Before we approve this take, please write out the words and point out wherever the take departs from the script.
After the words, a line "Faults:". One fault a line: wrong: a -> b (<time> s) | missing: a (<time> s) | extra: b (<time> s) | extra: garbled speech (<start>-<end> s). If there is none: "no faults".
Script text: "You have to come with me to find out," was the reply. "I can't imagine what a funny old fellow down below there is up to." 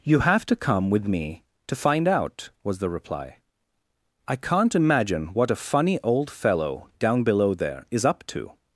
"You have to come with me to find out," was the reply. "I can't imagine what a funny old fellow down below there is up to."
Faults:
no faults